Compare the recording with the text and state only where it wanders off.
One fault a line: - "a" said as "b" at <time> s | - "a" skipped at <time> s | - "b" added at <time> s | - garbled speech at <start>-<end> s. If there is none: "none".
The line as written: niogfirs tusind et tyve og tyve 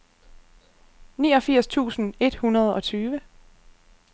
- "tyve" said as "hundrede" at 2.4 s